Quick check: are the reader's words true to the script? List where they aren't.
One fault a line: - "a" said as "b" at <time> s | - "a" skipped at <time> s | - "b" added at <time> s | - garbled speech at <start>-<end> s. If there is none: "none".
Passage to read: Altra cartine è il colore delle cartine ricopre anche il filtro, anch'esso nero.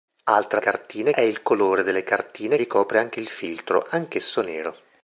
none